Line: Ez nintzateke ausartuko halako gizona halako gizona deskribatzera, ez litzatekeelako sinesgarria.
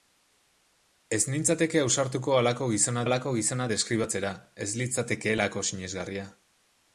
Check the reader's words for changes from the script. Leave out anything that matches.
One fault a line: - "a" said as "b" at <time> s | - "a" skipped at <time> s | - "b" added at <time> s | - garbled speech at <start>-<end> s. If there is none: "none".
none